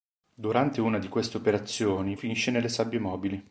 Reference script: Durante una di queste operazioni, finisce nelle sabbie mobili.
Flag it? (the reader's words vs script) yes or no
no